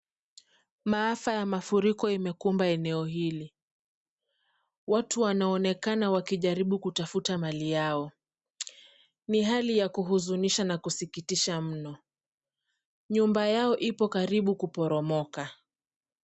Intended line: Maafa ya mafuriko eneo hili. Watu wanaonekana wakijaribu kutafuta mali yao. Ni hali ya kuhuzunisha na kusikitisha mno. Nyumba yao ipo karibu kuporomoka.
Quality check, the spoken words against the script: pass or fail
fail